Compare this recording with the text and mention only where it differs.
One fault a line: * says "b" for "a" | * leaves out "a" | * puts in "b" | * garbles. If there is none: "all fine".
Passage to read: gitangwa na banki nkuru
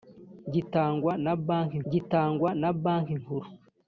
* puts in "gitangwa na banki"